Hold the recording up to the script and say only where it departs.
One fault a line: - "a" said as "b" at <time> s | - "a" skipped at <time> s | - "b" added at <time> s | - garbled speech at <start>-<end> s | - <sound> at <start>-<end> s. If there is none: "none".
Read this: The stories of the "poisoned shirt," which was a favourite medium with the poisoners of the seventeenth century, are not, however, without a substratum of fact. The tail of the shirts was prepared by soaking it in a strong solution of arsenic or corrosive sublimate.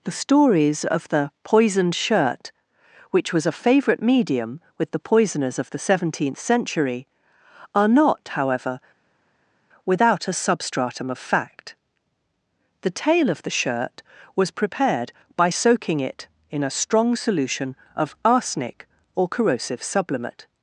- "shirts" said as "shirt" at 13.6 s